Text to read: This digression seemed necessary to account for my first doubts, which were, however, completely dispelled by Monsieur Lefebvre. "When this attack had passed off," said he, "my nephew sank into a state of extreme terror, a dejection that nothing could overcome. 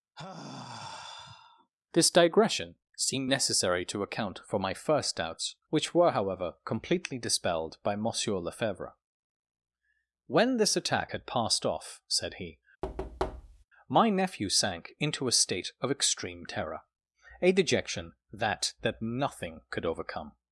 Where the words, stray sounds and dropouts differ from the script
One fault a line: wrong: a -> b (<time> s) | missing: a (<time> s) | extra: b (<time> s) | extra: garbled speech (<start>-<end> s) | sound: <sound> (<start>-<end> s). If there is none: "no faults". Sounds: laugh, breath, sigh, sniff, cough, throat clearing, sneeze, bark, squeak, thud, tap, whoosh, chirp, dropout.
sound: sigh (0.2-1.7 s)
sound: thud (12.8-13.6 s)
extra: that (18.8 s)